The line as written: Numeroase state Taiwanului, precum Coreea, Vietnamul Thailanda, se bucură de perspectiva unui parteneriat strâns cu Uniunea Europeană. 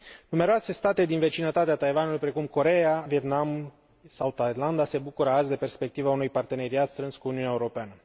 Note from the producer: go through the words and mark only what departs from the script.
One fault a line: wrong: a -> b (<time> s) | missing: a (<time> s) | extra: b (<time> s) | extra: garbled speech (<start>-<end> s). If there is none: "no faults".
extra: din vecinătatea (1.1 s)
extra: sau (4.1 s)
extra: azi (5.3 s)